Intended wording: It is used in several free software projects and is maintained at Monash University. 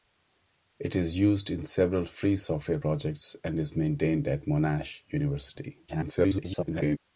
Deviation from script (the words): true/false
true